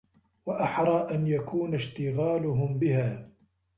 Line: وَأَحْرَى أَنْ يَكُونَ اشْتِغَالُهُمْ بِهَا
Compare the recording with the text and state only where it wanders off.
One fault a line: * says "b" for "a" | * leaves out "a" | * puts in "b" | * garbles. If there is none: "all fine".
all fine